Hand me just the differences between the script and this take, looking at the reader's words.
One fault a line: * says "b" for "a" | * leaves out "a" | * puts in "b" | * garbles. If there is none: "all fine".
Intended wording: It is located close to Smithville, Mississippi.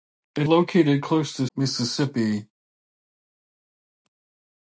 * leaves out "is"
* leaves out "Smithville"